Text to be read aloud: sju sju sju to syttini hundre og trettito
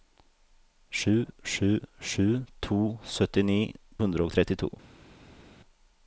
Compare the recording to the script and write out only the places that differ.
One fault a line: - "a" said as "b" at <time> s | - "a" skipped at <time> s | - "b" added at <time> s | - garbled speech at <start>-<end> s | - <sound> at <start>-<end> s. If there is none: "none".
none